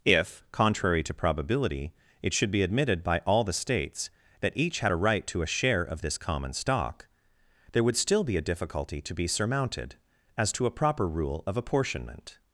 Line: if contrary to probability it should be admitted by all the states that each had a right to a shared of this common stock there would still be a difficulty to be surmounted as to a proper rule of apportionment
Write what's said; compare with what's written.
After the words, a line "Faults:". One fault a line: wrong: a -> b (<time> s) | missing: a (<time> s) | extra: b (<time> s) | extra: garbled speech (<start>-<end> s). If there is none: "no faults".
if contrary to probability it should be admitted by all the states that each had a right to a share of this common stock there would still be a difficulty to be surmounted as to a proper rule of apportionment
Faults:
wrong: shared -> share (5.5 s)